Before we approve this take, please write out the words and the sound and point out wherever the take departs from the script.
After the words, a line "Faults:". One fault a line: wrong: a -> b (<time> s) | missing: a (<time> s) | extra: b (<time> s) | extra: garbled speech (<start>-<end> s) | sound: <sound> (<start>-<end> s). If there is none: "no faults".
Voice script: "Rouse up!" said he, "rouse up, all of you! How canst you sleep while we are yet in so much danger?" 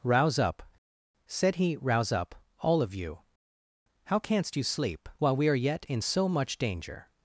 "Rouse up!" said he, "rouse up, all of you! How canst you sleep while we are yet in so much danger?"
Faults:
no faults